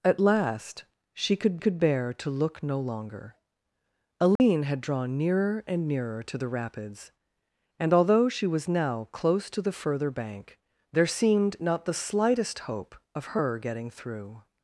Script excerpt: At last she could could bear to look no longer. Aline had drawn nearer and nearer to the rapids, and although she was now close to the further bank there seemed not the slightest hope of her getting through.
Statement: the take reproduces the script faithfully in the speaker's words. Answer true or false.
true